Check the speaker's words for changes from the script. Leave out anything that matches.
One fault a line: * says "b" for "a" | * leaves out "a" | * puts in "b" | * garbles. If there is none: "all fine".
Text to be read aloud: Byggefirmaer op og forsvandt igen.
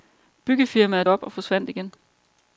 all fine